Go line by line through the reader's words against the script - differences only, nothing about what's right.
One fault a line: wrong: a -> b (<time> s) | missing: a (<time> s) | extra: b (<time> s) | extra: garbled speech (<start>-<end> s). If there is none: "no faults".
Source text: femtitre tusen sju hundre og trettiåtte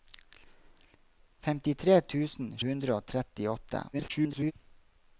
missing: sju (2.5 s)
extra: garbled speech (3.9-4.5 s)